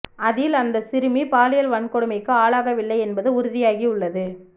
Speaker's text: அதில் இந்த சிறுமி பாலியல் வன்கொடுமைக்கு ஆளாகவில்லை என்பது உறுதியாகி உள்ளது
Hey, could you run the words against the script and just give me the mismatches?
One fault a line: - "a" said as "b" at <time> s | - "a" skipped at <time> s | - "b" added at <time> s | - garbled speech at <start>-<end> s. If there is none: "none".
- "இந்த" said as "அந்த" at 0.6 s